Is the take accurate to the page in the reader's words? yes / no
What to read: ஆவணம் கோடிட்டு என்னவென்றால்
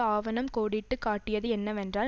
no